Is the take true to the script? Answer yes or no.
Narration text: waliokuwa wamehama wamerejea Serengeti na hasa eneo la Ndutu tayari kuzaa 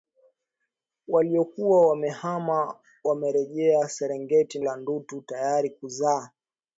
no